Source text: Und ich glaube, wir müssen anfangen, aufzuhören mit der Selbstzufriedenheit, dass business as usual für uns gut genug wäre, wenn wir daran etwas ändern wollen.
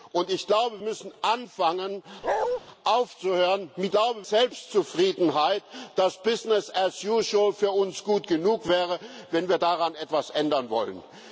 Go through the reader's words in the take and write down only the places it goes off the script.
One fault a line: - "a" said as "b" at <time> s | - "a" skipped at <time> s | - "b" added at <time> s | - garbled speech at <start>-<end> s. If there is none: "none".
- "wir" skipped at 0.8 s
- "der" said as "glaube" at 3.9 s